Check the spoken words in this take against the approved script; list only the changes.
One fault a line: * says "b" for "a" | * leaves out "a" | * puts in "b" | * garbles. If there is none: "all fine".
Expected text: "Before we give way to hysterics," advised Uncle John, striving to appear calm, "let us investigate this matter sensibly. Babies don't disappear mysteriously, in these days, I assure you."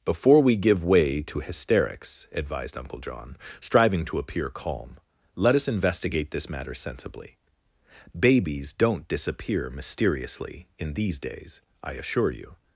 all fine